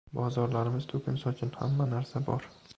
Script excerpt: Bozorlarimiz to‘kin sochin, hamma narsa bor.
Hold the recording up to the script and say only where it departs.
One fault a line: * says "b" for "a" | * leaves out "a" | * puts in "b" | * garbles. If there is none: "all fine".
all fine